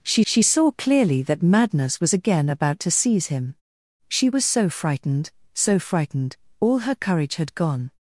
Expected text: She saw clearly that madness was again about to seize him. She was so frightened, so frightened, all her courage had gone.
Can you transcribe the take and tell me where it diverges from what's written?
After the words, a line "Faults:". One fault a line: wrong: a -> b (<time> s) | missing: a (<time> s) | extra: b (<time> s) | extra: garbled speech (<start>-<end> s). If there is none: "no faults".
She she saw clearly that madness was again about to seize him. She was so frightened, so frightened, all her courage had gone.
Faults:
extra: she (0.2 s)